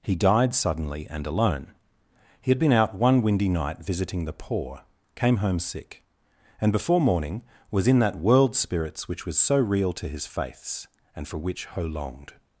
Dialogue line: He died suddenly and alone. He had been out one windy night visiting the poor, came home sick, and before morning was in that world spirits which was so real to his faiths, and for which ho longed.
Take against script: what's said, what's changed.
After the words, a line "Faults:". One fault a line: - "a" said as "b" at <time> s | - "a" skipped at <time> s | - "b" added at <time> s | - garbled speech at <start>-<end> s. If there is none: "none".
He died suddenly and alone. He had been out one windy night visiting the poor, came home sick, and before morning was in that world spirits which was so real to his faiths, and for which ho longed.
Faults:
none